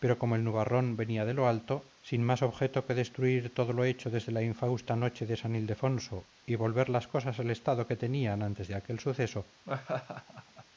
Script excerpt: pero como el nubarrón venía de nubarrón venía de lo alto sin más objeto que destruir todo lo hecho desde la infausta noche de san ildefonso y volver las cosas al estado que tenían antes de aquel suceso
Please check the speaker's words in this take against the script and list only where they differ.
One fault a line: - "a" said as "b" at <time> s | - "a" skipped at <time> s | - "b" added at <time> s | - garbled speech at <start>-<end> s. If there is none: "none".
- "nubarrón venía de" skipped at 1.4 s